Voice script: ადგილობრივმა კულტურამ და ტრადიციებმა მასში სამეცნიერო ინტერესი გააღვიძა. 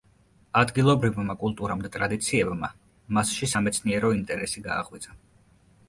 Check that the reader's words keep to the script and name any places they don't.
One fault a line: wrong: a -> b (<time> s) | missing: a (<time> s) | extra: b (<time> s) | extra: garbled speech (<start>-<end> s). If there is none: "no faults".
no faults